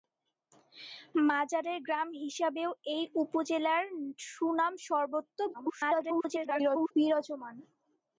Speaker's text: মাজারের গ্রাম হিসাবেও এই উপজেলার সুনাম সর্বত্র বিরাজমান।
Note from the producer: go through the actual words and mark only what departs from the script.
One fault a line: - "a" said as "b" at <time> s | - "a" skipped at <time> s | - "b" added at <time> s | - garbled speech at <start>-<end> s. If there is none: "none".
- garbled speech at 5.5-6.9 s